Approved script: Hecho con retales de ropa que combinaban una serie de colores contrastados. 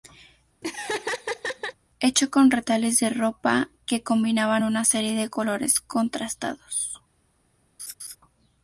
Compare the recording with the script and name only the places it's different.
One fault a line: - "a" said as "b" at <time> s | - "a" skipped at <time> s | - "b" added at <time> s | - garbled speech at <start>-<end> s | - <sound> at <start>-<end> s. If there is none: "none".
- laugh at 0.6-1.7 s
- laugh at 7.8-8.2 s